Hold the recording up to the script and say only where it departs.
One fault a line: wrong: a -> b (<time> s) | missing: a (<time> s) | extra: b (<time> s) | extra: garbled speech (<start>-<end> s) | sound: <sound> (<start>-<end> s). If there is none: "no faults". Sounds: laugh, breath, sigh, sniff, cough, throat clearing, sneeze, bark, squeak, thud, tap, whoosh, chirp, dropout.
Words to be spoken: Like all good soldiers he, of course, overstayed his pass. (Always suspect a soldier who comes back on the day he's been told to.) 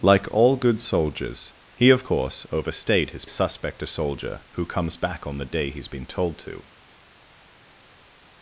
missing: pass Always (3.2 s)